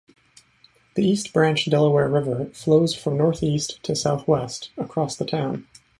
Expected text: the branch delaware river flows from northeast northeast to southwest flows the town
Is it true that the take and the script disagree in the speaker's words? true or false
true